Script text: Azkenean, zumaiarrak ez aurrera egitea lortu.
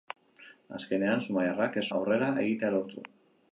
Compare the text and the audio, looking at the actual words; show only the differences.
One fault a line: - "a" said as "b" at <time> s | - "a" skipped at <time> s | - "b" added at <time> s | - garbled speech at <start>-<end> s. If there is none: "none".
none